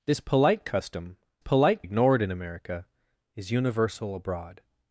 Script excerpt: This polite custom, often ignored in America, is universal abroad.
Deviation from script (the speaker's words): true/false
true